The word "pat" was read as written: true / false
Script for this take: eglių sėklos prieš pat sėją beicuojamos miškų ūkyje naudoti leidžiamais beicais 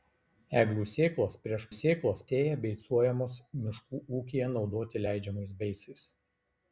false